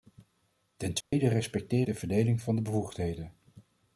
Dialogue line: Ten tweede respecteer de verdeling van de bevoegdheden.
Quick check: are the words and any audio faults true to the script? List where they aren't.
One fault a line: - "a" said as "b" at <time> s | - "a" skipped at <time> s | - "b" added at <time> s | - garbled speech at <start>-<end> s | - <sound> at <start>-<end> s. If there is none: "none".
- dropout at 1.0-1.1 s